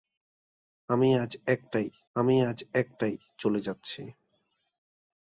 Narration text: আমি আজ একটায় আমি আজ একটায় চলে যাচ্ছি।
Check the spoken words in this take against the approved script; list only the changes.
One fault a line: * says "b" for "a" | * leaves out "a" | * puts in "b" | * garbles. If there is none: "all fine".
all fine